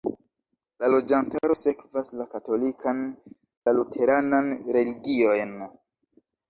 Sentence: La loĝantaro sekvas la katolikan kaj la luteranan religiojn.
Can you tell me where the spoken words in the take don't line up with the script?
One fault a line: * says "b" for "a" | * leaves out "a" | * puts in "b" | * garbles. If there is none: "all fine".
* leaves out "kaj"